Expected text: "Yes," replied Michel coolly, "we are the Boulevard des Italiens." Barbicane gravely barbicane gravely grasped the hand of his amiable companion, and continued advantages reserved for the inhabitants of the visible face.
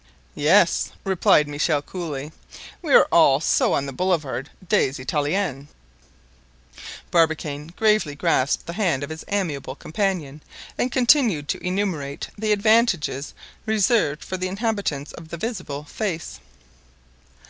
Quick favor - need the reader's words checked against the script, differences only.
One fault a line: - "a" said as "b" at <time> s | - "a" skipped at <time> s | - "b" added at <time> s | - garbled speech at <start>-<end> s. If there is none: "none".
- "all so on" added at 3.1 s
- "barbicane gravely" skipped at 8.2 s
- "to enumerate the" added at 11.5 s